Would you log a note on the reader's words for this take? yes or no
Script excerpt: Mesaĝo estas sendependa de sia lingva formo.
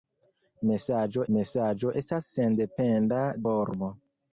yes